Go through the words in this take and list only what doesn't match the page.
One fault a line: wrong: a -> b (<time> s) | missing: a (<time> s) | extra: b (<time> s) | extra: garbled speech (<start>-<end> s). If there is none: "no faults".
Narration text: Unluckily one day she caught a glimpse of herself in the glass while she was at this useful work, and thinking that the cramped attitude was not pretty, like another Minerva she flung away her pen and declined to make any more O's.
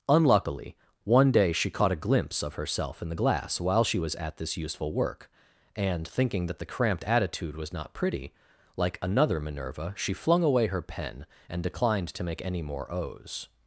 no faults